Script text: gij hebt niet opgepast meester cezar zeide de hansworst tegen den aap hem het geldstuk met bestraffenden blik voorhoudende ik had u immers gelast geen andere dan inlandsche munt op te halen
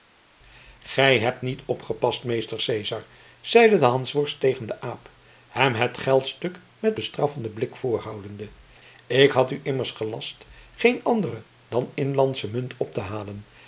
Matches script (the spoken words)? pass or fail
pass